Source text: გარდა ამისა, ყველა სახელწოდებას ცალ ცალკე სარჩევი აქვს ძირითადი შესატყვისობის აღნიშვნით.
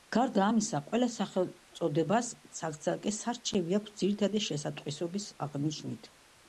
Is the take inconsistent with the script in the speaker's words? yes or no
no